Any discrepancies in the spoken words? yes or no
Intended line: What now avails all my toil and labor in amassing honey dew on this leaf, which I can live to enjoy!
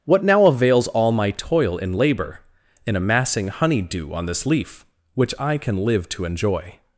no